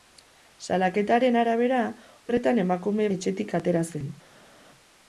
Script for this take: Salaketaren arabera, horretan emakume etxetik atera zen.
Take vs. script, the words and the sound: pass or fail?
pass